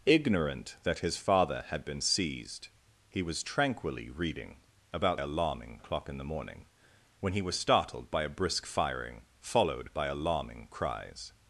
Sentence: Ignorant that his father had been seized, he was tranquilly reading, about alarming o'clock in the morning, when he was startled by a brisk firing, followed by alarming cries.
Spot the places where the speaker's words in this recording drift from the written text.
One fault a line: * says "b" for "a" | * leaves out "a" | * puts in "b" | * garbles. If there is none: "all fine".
all fine